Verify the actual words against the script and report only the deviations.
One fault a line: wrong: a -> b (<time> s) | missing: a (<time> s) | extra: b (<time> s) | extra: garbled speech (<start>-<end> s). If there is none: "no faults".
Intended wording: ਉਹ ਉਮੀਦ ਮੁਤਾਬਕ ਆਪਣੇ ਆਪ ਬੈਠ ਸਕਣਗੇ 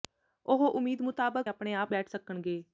no faults